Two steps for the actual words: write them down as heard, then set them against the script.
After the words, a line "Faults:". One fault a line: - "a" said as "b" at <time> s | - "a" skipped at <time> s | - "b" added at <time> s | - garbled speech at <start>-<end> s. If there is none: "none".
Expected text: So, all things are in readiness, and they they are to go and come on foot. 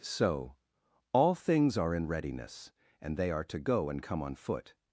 So, all things are in readiness, and they are to go and come on foot.
Faults:
- "they" skipped at 3.3 s